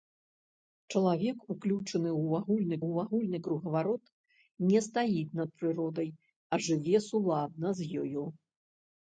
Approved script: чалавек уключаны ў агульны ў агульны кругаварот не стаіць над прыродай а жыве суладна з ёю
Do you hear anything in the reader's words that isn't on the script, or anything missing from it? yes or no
no